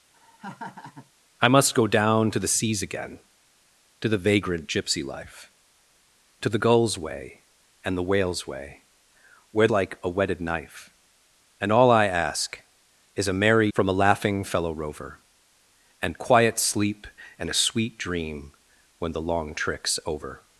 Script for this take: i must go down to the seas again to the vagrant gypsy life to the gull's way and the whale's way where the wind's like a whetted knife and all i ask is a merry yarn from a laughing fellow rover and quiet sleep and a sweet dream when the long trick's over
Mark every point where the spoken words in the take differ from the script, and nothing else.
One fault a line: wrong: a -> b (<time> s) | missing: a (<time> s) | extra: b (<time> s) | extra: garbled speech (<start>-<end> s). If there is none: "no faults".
missing: the wind's (9.7 s)
missing: yarn (13.7 s)